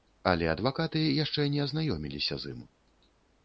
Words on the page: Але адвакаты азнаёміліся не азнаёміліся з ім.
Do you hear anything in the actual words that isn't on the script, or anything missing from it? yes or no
yes